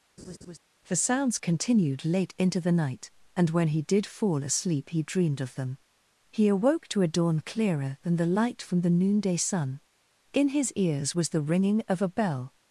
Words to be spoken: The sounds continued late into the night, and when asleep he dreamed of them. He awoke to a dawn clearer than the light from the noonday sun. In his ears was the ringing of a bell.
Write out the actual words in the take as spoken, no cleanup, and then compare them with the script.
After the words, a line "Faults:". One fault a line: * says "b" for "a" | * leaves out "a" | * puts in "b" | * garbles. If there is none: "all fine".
The sounds continued late into the night, and when he did fall asleep he dreamed of them. He awoke to a dawn clearer than the light from the noonday sun. In his ears was the ringing of a bell.
Faults:
* puts in "he did fall"